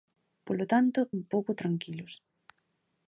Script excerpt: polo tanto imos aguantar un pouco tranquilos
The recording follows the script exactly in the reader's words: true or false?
false